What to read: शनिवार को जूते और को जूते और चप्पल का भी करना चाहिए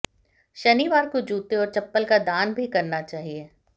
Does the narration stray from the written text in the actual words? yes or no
yes